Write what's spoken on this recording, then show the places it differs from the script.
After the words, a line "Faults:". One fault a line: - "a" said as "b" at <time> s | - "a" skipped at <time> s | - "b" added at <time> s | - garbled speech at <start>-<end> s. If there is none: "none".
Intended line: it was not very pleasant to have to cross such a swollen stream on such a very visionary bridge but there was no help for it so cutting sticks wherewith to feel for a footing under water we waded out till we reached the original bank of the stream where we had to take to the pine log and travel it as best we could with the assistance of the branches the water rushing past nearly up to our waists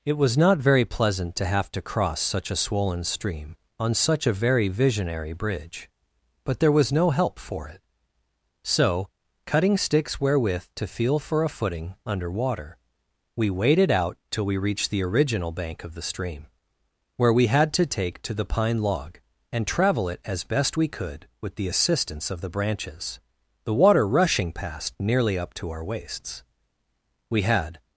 it was not very pleasant to have to cross such a swollen stream on such a very visionary bridge but there was no help for it so cutting sticks wherewith to feel for a footing under water we waded out till we reached the original bank of the stream where we had to take to the pine log and travel it as best we could with the assistance of the branches the water rushing past nearly up to our waists we had
Faults:
- "we had" added at 27.3 s